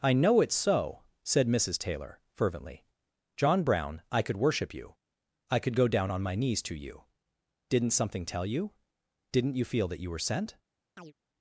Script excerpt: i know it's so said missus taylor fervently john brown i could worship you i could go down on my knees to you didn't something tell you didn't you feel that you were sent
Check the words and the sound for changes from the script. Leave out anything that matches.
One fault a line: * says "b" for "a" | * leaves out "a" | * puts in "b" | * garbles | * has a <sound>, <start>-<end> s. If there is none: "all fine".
* has a chirp, 11.0-11.1 s